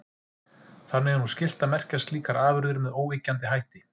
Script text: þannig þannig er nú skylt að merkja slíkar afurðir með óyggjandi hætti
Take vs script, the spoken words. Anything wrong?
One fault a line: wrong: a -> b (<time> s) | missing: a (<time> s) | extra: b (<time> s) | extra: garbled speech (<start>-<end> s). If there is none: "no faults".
missing: þannig (1.2 s)